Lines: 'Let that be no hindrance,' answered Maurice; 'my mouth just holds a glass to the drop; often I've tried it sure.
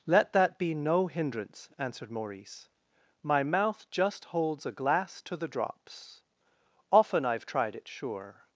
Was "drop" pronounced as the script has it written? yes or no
no